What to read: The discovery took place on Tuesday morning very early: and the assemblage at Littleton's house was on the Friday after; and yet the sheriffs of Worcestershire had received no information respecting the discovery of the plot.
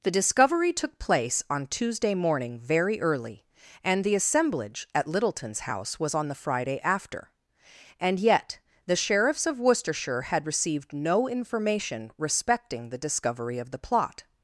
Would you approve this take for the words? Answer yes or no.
yes